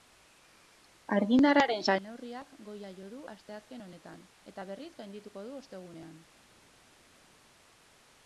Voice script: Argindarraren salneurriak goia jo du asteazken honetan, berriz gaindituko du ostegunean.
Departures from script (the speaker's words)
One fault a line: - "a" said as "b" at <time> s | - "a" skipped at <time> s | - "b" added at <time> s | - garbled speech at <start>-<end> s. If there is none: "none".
- "eta" added at 4.5 s